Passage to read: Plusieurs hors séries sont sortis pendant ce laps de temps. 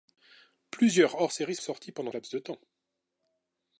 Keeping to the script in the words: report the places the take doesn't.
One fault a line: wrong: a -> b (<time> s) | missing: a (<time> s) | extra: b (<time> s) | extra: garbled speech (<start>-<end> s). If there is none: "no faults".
missing: sont (1.6 s)
missing: ce (2.1 s)